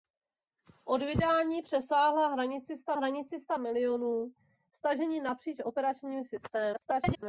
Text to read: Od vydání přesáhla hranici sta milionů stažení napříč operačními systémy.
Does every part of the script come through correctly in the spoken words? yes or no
no